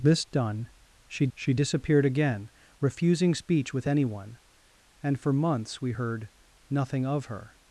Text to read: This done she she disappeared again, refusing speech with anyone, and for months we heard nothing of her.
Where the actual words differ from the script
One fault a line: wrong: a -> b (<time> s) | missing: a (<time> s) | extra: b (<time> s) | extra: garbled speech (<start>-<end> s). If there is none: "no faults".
no faults